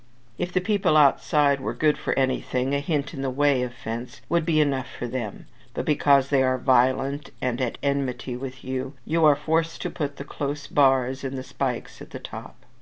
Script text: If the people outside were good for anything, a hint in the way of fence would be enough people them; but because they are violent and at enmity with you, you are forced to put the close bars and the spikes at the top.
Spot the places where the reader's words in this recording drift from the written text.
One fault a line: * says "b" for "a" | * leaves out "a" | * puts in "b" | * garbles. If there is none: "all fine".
* says "for" for "people"